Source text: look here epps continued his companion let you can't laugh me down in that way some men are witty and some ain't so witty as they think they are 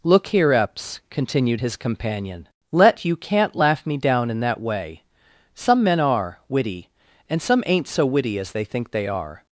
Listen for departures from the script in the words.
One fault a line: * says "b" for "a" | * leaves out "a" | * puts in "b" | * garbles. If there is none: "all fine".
all fine